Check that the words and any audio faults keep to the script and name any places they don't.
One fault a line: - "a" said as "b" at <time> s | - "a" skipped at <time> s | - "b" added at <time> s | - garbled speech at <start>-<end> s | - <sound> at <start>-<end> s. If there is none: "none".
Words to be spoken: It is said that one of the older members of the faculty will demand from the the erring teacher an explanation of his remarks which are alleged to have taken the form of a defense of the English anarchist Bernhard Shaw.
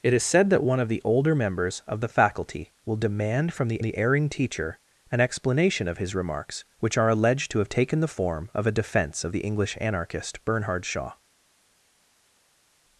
none